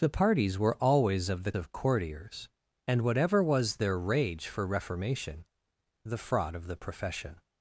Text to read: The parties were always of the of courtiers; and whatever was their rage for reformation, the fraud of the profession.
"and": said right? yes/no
yes